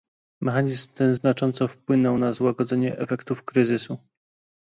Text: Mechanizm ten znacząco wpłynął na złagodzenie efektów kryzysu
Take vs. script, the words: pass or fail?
pass